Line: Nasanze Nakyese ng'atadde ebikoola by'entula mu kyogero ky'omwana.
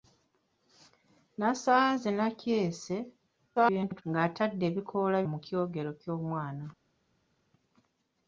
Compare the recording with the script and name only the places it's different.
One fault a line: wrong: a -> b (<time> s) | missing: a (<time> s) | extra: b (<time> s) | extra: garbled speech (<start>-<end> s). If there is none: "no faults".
extra: garbled speech (3.6-4.0 s)
missing: by'entula (5.2 s)